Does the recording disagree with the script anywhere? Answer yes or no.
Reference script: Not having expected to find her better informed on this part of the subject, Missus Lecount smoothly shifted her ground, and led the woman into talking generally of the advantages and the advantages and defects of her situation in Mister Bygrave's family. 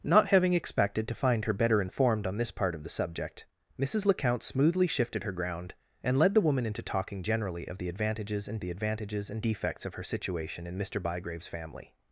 no